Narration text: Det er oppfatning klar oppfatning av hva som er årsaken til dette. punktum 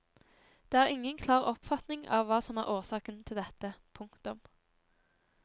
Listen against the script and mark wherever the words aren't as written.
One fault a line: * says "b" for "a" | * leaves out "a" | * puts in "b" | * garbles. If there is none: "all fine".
* says "ingen" for "oppfatning"